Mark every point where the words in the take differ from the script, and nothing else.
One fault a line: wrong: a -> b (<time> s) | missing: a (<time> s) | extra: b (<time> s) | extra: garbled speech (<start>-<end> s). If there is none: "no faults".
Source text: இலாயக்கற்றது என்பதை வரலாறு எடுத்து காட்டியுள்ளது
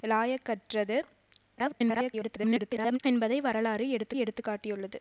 extra: garbled speech (1.6-3.0 s)
extra: எடுத்து (4.2 s)